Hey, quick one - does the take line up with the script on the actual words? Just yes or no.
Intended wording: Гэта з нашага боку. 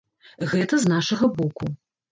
yes